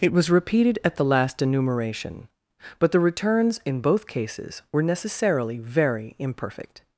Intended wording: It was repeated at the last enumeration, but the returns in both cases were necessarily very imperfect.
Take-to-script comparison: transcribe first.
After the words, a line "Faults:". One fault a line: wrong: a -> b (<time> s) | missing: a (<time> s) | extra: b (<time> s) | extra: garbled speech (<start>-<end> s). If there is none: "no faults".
It was repeated at the last enumeration, but the returns in both cases were necessarily very imperfect.
Faults:
no faults